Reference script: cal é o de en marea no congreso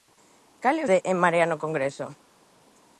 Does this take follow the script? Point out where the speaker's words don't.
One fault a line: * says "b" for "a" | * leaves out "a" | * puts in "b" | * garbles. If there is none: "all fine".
all fine